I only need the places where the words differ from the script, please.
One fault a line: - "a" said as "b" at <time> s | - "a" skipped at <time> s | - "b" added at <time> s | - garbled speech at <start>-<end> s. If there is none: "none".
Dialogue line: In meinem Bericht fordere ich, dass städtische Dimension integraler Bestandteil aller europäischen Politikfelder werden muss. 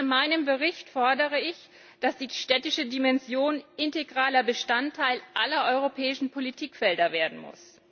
- "die" added at 2.2 s